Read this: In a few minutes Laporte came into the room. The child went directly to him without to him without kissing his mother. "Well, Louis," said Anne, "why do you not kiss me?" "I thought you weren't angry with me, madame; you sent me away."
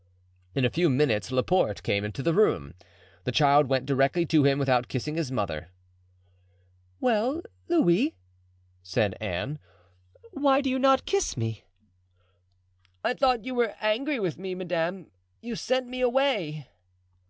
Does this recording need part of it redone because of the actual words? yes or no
yes